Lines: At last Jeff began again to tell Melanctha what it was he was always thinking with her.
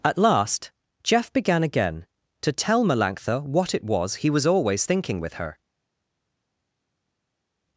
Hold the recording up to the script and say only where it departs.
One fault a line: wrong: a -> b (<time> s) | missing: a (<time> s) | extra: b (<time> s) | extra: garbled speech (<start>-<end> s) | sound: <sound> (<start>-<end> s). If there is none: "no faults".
no faults